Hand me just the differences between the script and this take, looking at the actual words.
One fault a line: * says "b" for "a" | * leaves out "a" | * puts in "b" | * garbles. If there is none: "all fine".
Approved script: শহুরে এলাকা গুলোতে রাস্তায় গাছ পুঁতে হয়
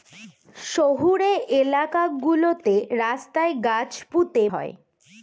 all fine